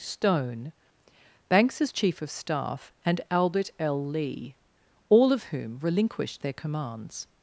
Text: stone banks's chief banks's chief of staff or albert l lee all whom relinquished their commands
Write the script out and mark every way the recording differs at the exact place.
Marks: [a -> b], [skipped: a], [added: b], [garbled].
stone banks's chief [skipped: banks's chief] of staff [or -> and] albert l lee all [added: of] whom relinquished their commands